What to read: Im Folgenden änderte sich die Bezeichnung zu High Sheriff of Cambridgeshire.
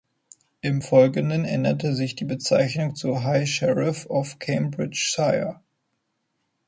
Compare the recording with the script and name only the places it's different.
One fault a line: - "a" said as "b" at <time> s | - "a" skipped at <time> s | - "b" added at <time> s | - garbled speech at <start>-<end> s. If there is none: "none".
none